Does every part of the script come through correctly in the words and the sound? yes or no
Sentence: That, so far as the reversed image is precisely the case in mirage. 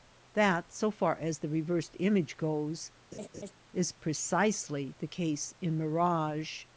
no